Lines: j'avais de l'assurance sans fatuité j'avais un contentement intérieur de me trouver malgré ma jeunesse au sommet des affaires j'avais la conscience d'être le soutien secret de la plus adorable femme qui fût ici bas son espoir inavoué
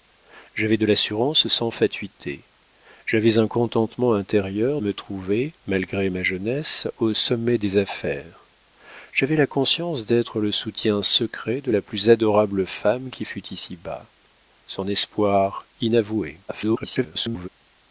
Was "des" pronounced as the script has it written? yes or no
yes